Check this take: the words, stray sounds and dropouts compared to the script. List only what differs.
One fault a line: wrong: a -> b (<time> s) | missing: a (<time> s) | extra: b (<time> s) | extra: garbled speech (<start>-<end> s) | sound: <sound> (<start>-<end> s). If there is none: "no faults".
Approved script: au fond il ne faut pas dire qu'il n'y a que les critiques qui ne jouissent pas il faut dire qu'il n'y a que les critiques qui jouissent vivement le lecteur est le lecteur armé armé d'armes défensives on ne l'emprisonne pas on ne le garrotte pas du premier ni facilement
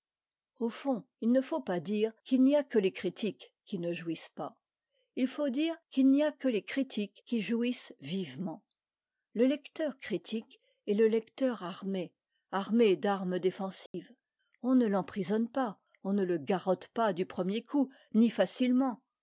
extra: critique (10.0 s)
sound: dropout (13.9-13.9 s)
extra: coup (17.6 s)